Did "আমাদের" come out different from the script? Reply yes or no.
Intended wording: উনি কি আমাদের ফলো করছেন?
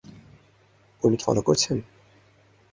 yes